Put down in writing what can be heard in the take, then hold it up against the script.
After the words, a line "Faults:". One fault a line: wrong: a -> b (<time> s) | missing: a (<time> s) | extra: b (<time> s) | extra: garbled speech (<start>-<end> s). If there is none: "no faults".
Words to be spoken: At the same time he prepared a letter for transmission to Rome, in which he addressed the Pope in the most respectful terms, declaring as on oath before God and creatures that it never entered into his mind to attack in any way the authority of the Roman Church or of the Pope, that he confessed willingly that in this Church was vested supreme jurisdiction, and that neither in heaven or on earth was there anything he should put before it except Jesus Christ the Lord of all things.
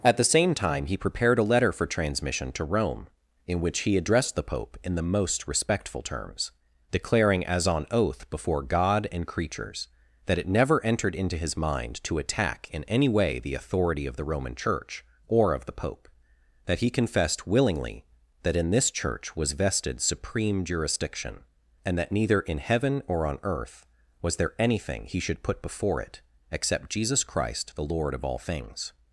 At the same time he prepared a letter for transmission to Rome, in which he addressed the Pope in the most respectful terms, declaring as on oath before God and creatures that it never entered into his mind to attack in any way the authority of the Roman Church or of the Pope, that he confessed willingly that in this Church was vested supreme jurisdiction, and that neither in heaven or on earth was there anything he should put before it except Jesus Christ the Lord of all things.
Faults:
no faults